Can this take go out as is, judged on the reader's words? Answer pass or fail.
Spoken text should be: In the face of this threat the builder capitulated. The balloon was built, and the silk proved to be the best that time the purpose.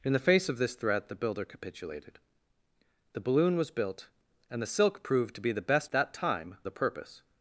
pass